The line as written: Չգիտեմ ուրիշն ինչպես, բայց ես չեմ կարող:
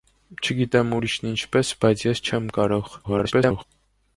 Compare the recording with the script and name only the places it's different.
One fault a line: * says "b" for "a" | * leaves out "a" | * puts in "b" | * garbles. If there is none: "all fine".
* garbles